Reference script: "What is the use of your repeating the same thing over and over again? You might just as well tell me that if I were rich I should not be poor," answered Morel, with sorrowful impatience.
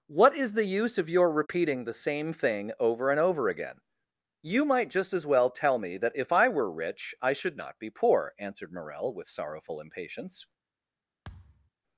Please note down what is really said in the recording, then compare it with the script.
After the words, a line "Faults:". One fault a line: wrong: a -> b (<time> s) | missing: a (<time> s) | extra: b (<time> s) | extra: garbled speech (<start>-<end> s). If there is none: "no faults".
"What is the use of your repeating the same thing over and over again? You might just as well tell me that if I were rich I should not be poor," answered Morel, with sorrowful impatience.
Faults:
no faults